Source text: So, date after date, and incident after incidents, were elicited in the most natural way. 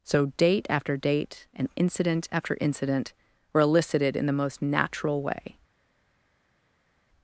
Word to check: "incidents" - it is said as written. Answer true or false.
false